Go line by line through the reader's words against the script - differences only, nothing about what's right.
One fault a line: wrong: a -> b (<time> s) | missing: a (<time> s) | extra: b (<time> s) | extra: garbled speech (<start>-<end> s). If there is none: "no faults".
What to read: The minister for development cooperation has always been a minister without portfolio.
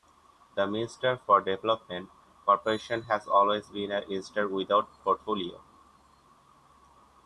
no faults